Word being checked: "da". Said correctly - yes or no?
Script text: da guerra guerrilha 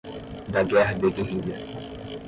yes